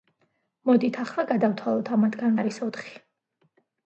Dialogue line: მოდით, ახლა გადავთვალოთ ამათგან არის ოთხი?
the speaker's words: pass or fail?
pass